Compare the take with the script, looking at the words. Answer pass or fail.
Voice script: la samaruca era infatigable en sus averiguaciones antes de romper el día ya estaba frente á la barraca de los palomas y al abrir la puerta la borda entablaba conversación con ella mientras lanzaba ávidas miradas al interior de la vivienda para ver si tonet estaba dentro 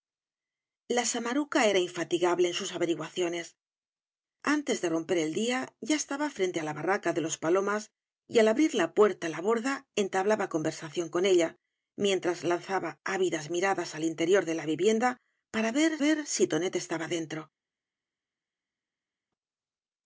fail